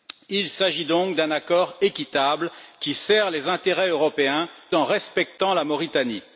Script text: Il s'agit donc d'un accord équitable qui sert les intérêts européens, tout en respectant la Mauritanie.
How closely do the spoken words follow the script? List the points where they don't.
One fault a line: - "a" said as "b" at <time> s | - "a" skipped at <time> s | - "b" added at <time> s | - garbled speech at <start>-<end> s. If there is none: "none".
- "tout" skipped at 4.5 s